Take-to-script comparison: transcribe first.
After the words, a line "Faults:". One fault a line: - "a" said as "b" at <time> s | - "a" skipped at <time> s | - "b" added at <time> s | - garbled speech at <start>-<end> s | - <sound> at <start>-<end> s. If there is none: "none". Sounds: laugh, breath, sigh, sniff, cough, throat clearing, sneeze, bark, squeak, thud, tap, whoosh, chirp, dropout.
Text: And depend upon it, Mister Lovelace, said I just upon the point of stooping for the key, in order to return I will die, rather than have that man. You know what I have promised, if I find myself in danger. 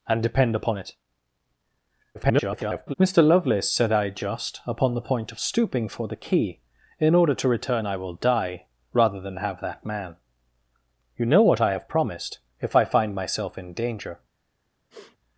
And depend upon it, [garbled] Mister Lovelace, said I just upon the point of stooping for the key, in order to return I will die, rather than have that man. You know what I have promised, if I find myself in danger.
Faults:
- garbled speech at 2.1-2.9 s
- sniff at 14.9-15.2 s